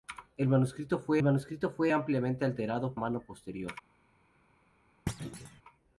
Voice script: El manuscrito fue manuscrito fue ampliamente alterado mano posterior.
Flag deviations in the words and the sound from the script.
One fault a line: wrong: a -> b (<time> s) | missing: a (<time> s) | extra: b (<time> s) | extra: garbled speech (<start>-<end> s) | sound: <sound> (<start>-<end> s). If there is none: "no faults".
sound: thud (5.1-5.6 s)